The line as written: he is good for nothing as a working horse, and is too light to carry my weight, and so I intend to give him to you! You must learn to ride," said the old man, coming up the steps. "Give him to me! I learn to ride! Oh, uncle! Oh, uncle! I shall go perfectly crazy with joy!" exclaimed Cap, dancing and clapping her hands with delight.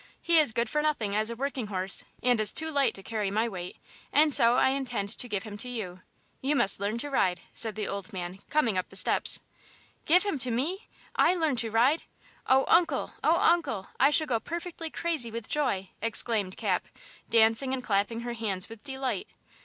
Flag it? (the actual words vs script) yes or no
no